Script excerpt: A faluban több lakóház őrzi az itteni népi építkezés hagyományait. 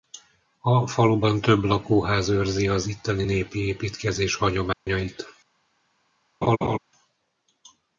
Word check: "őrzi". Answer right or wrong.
right